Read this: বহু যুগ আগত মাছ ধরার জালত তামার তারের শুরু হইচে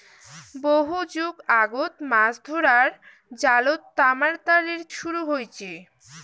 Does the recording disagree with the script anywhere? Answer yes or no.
no